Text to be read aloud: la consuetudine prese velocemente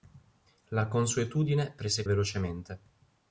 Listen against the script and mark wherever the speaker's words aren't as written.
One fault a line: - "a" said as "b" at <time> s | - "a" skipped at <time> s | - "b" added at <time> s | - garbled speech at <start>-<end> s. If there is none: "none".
none